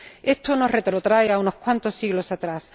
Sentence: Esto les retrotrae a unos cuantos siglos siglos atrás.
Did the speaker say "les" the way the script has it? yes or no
no